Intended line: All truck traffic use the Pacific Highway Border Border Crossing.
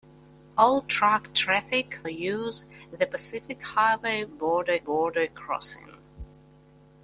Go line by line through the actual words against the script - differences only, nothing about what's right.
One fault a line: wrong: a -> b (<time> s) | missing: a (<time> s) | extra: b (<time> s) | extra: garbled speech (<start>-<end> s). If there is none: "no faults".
no faults